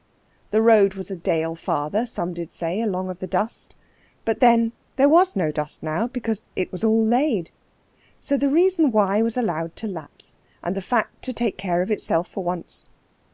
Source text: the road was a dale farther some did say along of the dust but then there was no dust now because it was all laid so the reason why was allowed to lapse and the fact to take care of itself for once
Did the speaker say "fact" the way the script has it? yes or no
yes